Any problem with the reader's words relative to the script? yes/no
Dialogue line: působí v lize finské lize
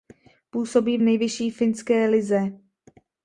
yes